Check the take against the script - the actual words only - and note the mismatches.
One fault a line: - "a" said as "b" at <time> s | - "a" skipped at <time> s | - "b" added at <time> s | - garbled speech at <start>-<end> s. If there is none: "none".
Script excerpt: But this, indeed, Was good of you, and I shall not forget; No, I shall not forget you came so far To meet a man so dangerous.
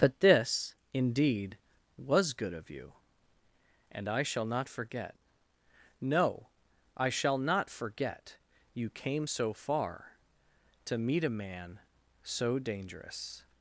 none